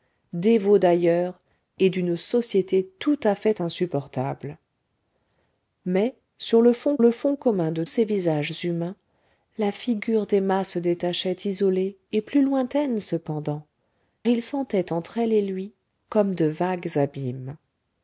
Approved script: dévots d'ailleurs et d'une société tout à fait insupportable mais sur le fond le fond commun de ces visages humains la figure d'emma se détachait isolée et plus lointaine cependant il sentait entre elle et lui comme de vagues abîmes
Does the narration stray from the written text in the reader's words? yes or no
no